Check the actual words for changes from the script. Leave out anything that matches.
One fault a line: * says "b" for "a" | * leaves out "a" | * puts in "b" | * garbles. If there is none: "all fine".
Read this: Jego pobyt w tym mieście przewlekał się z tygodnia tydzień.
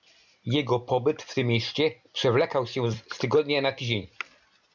* puts in "na"